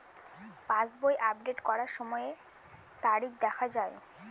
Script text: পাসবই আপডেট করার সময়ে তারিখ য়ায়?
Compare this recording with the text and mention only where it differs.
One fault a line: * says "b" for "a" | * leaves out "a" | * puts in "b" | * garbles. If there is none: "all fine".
* puts in "দেখা"